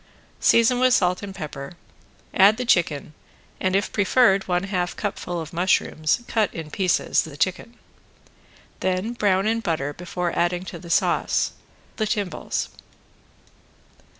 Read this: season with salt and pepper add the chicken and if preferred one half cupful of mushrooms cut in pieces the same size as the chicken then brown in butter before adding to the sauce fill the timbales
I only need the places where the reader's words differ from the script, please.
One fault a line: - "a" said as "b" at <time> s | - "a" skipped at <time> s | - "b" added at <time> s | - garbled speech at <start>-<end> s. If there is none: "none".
- "same size as" skipped at 7.3 s
- "fill" skipped at 11.5 s